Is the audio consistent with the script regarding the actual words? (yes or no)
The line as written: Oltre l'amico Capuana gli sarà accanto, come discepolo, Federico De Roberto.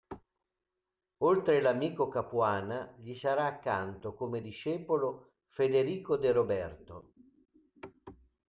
yes